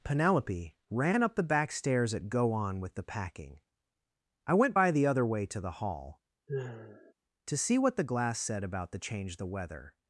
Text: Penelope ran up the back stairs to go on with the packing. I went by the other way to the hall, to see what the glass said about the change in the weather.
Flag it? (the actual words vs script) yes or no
yes